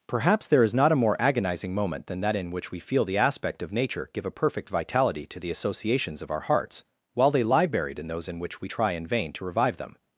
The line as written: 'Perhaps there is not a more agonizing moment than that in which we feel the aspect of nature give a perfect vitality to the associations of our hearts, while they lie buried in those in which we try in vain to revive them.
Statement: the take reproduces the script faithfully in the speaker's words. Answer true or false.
true